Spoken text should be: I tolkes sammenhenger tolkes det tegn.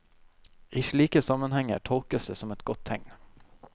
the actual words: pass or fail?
fail